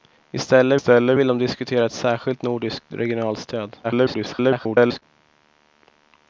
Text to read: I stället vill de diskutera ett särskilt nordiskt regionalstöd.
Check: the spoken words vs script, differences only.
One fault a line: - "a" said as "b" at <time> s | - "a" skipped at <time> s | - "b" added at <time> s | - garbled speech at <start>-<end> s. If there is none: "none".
- "stället" added at 0.7 s
- garbled speech at 3.8-5.0 s